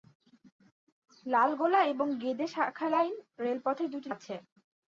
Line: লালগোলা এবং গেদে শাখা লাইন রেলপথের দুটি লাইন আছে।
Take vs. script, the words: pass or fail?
fail